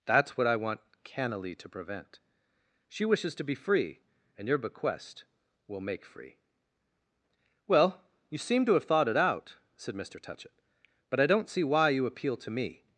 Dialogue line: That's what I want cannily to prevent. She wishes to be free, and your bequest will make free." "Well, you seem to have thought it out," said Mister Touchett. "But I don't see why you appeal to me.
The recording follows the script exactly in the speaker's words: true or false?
true